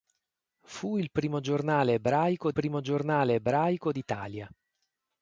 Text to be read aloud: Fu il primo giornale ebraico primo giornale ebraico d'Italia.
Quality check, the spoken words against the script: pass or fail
pass